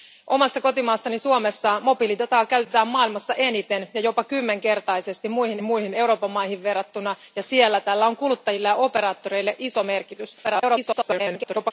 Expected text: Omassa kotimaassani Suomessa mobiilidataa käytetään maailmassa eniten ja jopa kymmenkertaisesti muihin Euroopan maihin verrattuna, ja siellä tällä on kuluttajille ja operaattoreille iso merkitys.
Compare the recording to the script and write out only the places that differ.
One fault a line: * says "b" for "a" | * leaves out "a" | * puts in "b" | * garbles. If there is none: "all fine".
* puts in "muihin"
* garbles